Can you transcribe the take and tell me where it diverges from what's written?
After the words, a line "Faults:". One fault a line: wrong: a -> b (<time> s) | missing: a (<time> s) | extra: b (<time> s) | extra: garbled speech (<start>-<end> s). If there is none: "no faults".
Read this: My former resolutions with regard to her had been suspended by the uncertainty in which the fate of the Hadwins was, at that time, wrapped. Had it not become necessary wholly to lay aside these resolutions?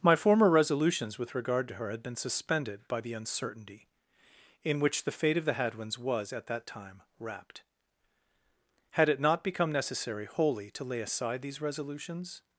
My former resolutions with regard to her had been suspended by the uncertainty in which the fate of the Hadwins was, at that time, wrapped. Had it not become necessary wholly to lay aside these resolutions?
Faults:
no faults